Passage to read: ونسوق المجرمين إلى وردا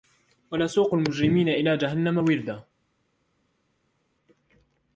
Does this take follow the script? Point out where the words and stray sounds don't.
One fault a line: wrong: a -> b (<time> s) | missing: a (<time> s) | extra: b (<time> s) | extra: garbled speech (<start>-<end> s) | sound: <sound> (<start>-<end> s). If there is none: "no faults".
extra: جهنم (1.8 s)